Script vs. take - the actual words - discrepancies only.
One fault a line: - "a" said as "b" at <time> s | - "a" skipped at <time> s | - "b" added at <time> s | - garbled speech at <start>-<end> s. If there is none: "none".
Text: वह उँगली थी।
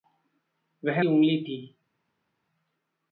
none